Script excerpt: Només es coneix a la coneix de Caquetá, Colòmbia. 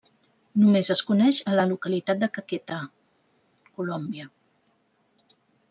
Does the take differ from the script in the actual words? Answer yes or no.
yes